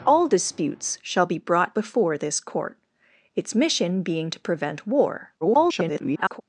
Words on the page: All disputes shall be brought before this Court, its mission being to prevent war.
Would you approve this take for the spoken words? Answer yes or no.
no